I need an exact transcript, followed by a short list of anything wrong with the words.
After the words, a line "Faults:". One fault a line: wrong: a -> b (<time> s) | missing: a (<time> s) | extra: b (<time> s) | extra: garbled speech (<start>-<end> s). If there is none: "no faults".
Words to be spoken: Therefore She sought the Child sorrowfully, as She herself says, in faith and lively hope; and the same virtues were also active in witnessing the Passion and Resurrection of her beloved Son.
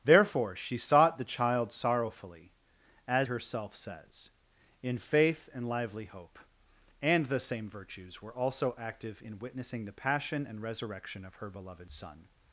Therefore She sought the Child sorrowfully, as Herself says, in faith and lively hope; and the same virtues were also active in witnessing the Passion and Resurrection of her beloved Son.
Faults:
missing: She (3.3 s)